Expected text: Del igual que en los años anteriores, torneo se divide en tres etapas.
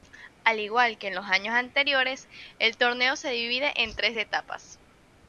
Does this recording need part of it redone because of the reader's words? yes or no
yes